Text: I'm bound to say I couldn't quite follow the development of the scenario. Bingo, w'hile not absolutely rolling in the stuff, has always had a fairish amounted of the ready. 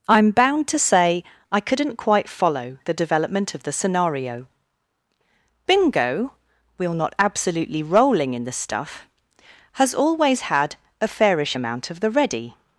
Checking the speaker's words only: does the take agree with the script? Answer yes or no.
no